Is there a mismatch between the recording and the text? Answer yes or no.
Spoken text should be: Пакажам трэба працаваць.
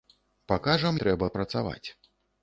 no